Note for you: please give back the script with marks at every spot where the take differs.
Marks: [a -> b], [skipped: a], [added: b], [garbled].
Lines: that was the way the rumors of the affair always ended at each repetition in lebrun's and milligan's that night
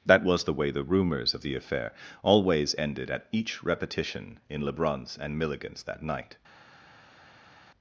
that was the way the rumors of the affair always ended at each repetition in lebrun's and milligan's that night